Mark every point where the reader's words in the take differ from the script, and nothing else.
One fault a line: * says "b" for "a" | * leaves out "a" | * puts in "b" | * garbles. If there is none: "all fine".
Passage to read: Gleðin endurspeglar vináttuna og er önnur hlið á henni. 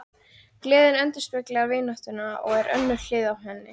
all fine